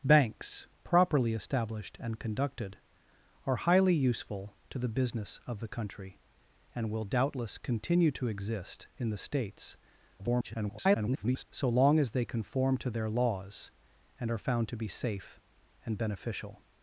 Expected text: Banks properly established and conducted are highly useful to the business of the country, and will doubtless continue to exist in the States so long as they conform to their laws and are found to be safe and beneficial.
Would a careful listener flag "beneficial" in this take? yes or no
no